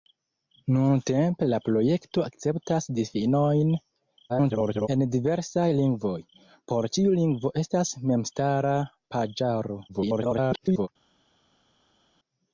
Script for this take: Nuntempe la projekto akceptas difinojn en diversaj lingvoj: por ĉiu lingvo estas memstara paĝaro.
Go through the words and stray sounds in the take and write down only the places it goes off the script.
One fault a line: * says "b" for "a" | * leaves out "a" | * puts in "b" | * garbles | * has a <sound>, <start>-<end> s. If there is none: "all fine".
* garbles
* garbles